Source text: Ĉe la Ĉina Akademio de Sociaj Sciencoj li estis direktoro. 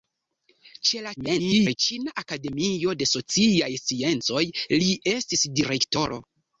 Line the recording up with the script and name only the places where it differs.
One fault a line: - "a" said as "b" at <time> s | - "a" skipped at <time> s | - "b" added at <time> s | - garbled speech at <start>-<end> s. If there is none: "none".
- garbled speech at 1.2-1.8 s